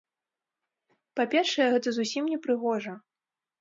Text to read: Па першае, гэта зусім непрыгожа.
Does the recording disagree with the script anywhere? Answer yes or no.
no